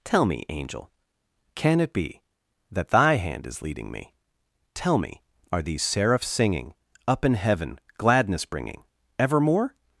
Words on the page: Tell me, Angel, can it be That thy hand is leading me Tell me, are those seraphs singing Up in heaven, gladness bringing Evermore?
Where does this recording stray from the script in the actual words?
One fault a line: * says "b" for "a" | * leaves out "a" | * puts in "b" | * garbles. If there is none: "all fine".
* says "these" for "those"